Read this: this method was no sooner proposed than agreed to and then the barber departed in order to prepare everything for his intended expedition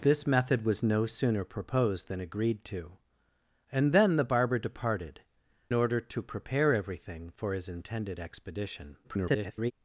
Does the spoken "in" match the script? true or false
false